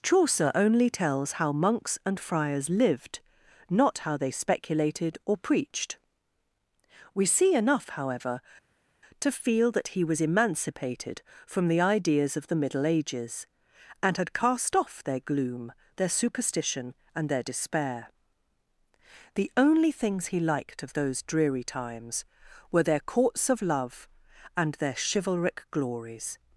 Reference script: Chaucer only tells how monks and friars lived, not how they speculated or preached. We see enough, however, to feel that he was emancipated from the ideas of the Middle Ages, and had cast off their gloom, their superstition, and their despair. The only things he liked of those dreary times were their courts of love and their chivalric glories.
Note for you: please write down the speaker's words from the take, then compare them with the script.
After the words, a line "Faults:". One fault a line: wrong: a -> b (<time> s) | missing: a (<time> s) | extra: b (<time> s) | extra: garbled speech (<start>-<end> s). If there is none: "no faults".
Chaucer only tells how monks and friars lived, not how they speculated or preached. We see enough, however, to feel that he was emancipated from the ideas of the Middle Ages, and had cast off their gloom, their superstition, and their despair. The only things he liked of those dreary times were their courts of love and their chivalric glories.
Faults:
no faults